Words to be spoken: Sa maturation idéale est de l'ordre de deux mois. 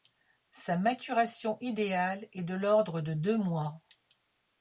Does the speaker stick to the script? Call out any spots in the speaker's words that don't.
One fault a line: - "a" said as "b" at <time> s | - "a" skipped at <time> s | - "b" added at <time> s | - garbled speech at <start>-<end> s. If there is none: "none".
none